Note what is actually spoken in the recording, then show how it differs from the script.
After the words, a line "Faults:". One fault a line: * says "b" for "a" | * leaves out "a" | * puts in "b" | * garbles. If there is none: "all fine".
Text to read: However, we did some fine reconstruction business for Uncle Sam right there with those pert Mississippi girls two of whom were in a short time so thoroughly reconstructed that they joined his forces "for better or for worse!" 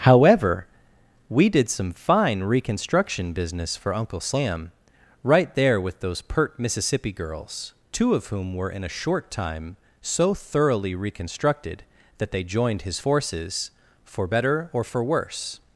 However, we did some fine reconstruction business for Uncle Sam right there with those pert Mississippi girls two of whom were in a short time so thoroughly reconstructed that they joined his forces "for better or for worse!"
Faults:
all fine